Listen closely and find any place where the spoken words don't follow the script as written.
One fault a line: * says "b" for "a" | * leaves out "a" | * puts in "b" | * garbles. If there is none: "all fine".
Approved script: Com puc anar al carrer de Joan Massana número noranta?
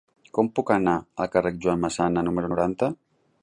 all fine